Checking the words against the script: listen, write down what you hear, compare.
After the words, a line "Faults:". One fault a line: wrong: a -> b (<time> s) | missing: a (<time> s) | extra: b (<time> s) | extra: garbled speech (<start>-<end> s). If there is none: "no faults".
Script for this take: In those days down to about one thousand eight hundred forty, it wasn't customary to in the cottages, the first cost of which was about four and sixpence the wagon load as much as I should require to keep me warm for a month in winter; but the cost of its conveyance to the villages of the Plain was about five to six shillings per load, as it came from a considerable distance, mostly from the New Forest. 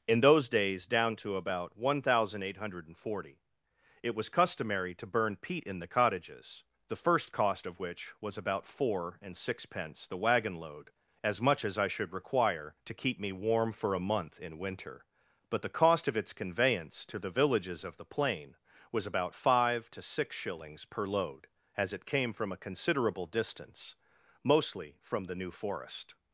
In those days down to about one thousand eight hundred forty, it was customary to burn peat in the cottages, the first cost of which was about four and sixpence the wagon load as much as I should require to keep me warm for a month in winter; but the cost of its conveyance to the villages of the Plain was about five to six shillings per load, as it came from a considerable distance, mostly from the New Forest.
Faults:
wrong: wasn't -> was (4.2 s)
extra: burn peat (5.0 s)